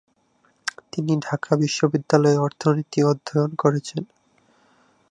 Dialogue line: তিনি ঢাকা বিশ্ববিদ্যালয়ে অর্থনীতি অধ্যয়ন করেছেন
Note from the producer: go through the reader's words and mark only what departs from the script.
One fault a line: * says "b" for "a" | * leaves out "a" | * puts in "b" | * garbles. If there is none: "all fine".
all fine